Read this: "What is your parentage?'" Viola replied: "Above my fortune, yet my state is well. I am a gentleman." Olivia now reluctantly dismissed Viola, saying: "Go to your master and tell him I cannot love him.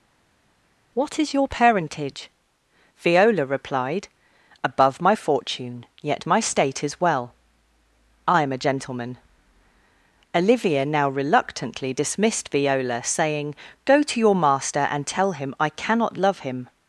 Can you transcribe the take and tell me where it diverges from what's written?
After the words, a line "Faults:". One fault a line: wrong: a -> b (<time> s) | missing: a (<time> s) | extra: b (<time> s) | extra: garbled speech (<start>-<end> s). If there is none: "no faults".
"What is your parentage?'" Viola replied: "Above my fortune, yet my state is well. I am a gentleman." Olivia now reluctantly dismissed Viola, saying: "Go to your master and tell him I cannot love him.
Faults:
no faults